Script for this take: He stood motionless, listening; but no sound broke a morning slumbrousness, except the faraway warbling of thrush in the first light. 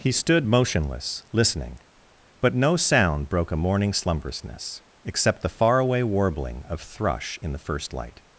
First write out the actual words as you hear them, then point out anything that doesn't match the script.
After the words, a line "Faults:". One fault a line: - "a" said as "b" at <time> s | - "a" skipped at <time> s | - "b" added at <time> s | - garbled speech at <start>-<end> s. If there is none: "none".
He stood motionless, listening; but no sound broke a morning slumbrousness, except the faraway warbling of thrush in the first light.
Faults:
none